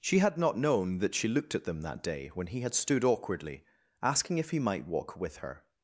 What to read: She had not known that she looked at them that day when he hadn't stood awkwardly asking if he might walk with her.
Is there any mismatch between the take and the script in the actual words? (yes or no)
yes